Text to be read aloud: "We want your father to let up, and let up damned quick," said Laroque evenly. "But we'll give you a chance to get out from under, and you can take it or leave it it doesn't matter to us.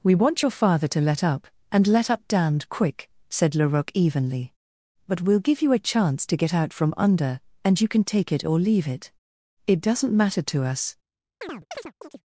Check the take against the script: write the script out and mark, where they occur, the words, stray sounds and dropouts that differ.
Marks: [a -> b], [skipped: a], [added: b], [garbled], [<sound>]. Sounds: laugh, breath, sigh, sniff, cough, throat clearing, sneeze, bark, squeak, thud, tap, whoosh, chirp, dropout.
"We want your father to let up, and let up damned quick," said Laroque evenly. "But we'll give you a chance to get out from under, and you can take it or leave it it doesn't matter to us. [chirp]